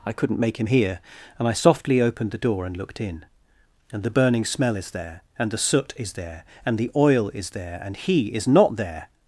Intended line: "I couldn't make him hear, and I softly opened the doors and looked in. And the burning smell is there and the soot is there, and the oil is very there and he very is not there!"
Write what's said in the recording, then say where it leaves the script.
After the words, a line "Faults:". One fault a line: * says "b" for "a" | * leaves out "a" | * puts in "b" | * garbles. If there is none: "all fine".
"I couldn't make him hear, and I softly opened the door and looked in. And the burning smell is there and the soot is there, and the oil is there and he is not there!"
Faults:
* says "door" for "doors"
* leaves out "very"
* leaves out "very"